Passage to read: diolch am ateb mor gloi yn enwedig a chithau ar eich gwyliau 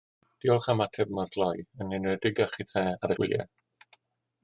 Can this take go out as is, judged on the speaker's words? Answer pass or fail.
fail